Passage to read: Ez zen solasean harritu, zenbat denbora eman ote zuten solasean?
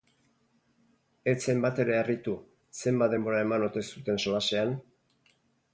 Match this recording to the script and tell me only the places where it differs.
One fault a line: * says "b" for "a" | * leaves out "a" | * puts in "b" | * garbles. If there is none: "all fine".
* says "batere" for "solasean"